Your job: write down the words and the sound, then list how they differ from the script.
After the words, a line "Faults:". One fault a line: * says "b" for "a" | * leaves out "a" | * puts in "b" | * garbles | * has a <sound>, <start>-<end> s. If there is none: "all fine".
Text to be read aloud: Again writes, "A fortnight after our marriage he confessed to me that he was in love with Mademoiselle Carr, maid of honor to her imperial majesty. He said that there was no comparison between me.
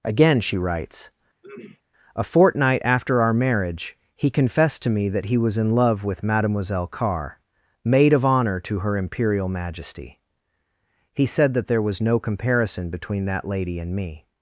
Again she writes, "A fortnight after our marriage he confessed to me that he was in love with Mademoiselle Carr, maid of honor to her imperial majesty. He said that there was no comparison between that lady and me.
Faults:
* puts in "she"
* has a throat clearing, 1.4-1.8 s
* puts in "that lady and"